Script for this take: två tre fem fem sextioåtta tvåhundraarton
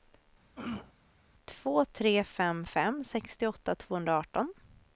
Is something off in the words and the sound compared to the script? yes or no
yes